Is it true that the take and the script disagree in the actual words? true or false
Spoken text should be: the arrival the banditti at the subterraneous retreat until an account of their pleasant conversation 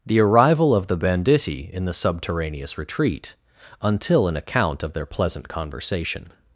true